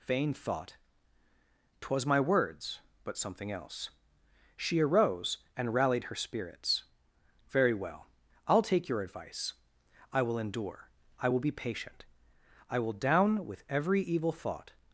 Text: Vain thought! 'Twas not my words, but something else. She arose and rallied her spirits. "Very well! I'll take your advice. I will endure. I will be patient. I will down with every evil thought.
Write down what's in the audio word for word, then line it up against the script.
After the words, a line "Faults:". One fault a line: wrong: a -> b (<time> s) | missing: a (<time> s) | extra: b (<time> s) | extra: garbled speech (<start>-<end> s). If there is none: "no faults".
Vain thought! 'Twas my words, but something else. She arose and rallied her spirits. "Very well! I'll take your advice. I will endure. I will be patient. I will down with every evil thought.
Faults:
missing: not (2.0 s)